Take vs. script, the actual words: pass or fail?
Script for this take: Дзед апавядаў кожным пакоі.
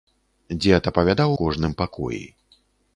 pass